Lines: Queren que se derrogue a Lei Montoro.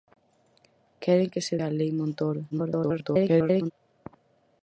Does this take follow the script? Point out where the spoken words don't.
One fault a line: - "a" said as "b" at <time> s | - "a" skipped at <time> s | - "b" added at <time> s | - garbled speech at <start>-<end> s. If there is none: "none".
- "derrogue" skipped at 1.6 s
- garbled speech at 2.5-3.7 s